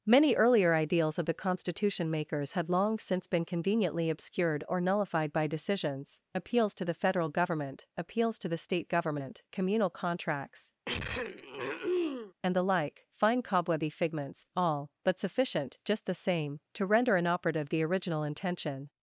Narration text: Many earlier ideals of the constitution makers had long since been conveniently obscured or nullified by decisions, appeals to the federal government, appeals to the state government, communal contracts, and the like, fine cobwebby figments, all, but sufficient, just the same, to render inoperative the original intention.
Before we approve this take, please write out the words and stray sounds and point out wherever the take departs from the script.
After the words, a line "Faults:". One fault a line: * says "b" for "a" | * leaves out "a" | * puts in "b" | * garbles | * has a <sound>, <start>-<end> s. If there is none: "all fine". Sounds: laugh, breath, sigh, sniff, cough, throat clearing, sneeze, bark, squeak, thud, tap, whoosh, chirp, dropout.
Many earlier ideals of the constitution makers had long since been conveniently obscured or nullified by decisions, appeals to the federal government, appeals to the state government, communal contracts, and the like, fine cobwebby figments, all, but sufficient, just the same, to render inoperative the original intention.
Faults:
* has a throat clearing, 10.9-12.3 s